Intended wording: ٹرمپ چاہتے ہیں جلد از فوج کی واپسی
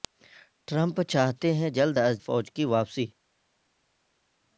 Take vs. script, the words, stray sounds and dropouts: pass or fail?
pass